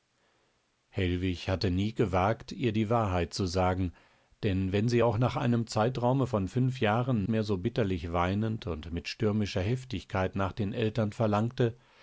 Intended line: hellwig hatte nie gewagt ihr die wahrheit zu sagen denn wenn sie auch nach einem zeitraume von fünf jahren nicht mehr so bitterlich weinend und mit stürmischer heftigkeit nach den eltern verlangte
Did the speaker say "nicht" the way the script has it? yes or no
no